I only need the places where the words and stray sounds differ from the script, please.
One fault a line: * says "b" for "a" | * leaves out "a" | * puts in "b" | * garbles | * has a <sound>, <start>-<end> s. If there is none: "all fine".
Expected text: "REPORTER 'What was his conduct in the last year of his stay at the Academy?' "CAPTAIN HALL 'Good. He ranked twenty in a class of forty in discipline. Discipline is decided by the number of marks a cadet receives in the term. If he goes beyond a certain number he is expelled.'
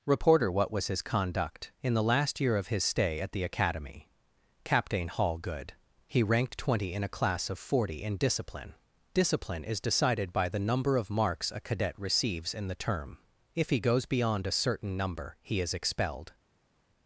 all fine